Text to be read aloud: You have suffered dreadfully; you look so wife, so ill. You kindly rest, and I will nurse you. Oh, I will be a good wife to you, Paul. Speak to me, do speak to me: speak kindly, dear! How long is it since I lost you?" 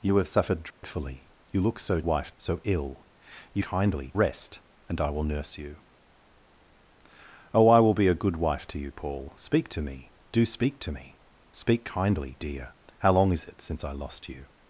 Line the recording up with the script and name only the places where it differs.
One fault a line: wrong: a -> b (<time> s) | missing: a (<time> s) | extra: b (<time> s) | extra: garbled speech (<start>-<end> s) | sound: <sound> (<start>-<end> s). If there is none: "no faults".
sound: dropout (0.7-0.8 s)